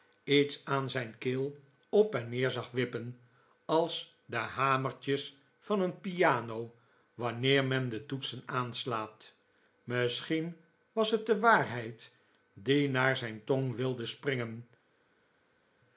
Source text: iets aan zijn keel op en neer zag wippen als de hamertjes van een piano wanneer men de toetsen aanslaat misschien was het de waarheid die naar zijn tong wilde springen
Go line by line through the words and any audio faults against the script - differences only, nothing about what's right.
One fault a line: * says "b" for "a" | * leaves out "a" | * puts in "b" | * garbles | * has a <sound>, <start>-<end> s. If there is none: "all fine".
all fine